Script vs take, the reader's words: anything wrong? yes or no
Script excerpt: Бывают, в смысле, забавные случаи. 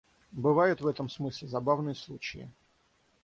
yes